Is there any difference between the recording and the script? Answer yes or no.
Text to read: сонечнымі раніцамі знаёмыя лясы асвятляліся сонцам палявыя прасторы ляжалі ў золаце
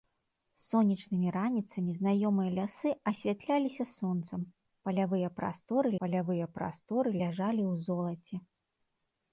yes